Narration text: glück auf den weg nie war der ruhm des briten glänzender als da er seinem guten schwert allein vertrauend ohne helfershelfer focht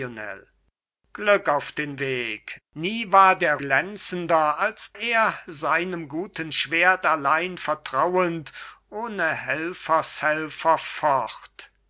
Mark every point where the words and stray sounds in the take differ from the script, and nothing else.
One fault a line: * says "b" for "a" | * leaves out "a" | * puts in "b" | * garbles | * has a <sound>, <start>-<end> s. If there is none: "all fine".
* leaves out "ruhm des briten"
* leaves out "da"